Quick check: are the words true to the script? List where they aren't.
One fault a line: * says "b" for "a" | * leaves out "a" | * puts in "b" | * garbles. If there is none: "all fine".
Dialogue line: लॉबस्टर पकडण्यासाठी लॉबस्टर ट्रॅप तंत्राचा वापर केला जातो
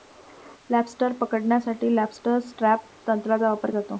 * leaves out "केला"